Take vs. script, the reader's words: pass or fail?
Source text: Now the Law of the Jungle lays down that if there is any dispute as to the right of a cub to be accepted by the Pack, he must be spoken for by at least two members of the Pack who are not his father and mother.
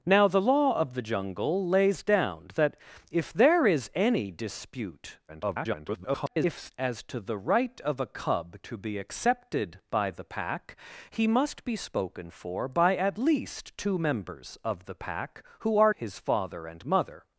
fail